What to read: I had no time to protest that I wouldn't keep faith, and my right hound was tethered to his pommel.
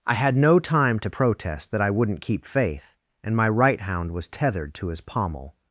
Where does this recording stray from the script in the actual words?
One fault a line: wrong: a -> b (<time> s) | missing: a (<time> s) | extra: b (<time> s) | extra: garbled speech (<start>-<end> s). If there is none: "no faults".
no faults